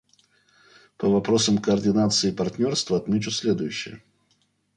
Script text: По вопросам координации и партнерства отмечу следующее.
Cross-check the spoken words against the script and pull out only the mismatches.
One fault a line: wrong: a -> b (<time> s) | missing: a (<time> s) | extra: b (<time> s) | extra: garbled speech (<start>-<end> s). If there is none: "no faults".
no faults